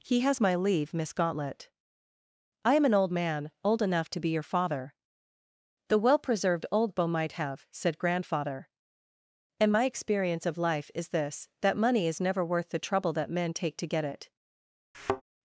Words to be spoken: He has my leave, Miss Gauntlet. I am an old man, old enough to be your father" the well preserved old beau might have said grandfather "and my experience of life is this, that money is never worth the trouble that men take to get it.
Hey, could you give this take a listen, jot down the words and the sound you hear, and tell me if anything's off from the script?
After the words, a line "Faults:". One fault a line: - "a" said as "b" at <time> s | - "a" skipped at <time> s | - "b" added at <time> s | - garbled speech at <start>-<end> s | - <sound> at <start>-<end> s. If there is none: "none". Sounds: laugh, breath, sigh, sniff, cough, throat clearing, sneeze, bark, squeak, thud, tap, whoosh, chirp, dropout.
He has my leave, Miss Gauntlet. I am an old man, old enough to be your father" the well preserved old beau might have said grandfather "and my experience of life is this, that money is never worth the trouble that men take to get it.
Faults:
- thud at 14.9-15.2 s